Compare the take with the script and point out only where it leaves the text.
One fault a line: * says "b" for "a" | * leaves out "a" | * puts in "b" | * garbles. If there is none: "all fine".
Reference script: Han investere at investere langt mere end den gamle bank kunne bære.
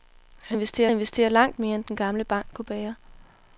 all fine